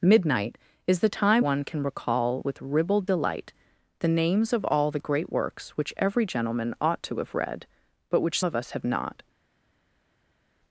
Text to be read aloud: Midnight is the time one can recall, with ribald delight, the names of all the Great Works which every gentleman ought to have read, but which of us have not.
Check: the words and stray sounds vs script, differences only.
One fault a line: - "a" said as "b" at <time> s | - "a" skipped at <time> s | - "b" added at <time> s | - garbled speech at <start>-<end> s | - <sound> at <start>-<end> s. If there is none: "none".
none